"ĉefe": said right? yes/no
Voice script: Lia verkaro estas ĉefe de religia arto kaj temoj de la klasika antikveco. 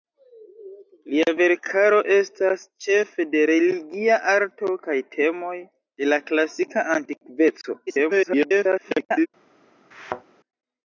yes